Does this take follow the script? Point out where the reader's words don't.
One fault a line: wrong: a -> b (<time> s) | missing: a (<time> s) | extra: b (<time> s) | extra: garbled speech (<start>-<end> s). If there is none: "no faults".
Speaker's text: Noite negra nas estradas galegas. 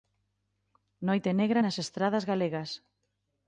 no faults